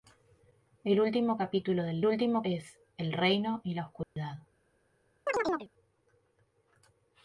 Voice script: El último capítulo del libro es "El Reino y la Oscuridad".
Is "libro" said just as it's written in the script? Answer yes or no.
no